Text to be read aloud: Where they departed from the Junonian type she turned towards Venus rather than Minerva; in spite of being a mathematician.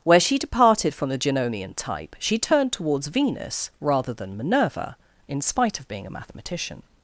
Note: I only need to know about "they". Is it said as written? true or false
false